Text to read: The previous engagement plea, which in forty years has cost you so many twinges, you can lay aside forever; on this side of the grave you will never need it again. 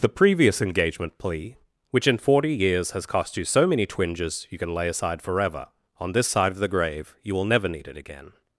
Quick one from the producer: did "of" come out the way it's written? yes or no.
yes